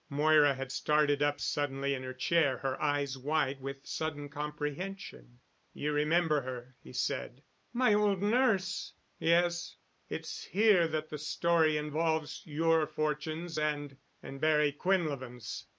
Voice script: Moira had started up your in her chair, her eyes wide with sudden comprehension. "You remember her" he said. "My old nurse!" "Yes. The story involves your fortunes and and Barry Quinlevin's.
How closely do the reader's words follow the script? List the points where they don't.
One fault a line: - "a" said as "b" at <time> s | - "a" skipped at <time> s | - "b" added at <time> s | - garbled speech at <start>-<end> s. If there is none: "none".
- "your" said as "suddenly" at 1.4 s
- "It's here that" added at 10.1 s